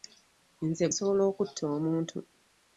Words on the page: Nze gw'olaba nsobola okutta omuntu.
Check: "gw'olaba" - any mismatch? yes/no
yes